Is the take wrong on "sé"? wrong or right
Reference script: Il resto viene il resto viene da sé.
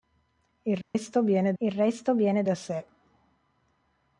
right